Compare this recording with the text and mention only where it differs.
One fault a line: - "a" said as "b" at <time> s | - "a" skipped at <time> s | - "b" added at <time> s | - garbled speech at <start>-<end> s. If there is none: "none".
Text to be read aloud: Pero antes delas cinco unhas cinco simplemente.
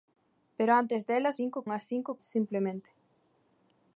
none